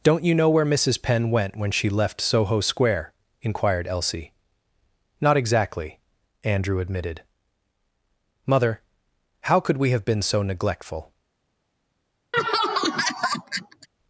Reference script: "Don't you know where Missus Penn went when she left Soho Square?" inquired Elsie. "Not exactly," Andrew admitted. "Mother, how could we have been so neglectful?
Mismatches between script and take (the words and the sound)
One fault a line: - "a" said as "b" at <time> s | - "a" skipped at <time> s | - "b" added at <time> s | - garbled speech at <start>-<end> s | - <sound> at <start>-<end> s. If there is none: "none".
- laugh at 12.3-13.9 s